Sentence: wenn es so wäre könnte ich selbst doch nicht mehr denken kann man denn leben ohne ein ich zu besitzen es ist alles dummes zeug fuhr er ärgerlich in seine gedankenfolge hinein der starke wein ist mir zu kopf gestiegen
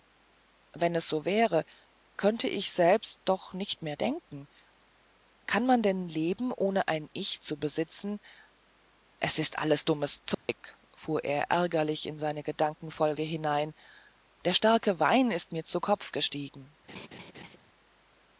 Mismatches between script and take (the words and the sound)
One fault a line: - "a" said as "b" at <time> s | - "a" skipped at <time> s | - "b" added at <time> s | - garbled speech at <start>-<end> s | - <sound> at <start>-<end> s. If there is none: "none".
- dropout at 10.3-10.5 s
- laugh at 16.9-17.6 s